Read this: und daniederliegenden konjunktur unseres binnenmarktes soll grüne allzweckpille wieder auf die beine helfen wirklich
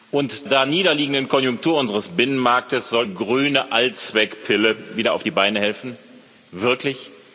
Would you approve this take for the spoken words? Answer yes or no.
yes